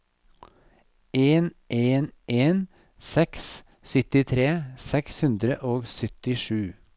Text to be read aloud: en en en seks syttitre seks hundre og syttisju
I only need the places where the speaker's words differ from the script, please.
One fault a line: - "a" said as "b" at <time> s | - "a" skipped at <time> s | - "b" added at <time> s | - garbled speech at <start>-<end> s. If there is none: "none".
none